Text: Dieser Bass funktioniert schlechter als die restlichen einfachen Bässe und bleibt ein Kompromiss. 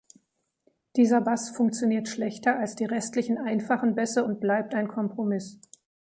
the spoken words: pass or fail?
pass